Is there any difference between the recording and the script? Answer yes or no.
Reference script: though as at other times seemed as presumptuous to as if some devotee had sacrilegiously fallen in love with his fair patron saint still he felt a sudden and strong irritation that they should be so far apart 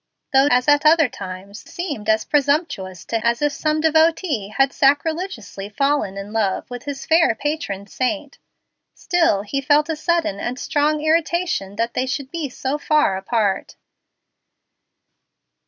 no